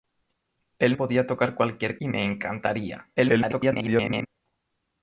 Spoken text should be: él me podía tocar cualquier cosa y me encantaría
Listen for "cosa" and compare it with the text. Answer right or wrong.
wrong